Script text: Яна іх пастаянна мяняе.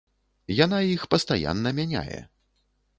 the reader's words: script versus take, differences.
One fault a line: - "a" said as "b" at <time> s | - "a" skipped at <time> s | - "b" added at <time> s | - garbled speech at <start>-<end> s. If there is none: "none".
none